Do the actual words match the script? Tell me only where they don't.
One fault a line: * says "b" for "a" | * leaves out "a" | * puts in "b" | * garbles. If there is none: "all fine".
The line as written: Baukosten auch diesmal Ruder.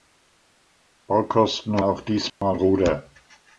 all fine